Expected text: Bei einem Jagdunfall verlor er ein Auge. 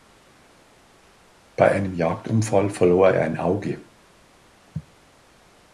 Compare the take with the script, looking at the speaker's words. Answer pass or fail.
pass